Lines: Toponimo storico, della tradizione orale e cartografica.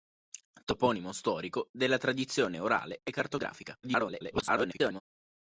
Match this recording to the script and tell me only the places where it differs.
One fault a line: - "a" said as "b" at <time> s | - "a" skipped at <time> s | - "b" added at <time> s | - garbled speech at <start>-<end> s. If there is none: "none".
- garbled speech at 3.8-5.0 s